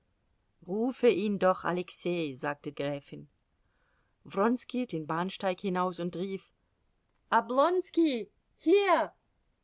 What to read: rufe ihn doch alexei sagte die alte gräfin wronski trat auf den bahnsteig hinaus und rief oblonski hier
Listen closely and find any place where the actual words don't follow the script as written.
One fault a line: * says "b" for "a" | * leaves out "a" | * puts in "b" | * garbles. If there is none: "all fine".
* leaves out "die alte"
* leaves out "trat auf"